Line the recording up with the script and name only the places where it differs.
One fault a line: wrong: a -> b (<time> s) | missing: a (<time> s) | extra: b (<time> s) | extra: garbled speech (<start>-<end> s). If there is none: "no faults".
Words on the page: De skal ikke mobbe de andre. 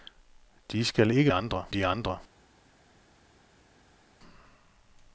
wrong: mobbe -> andre (1.3 s)